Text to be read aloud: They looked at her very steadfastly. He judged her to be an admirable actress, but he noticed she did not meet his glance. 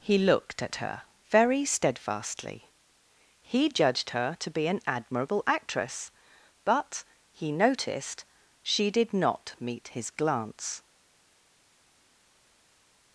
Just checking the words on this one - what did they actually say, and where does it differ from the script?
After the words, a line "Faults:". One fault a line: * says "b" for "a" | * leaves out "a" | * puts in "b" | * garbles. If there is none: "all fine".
He looked at her very steadfastly. He judged her to be an admirable actress, but he noticed she did not meet his glance.
Faults:
* says "He" for "They"